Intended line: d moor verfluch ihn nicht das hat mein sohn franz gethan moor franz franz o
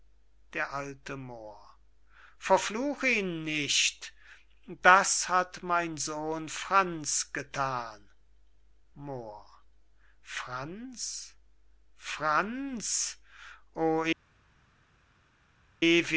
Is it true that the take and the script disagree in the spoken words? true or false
true